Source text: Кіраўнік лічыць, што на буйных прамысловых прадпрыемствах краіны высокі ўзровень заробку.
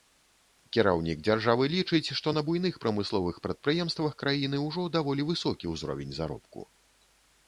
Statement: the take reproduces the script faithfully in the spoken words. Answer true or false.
false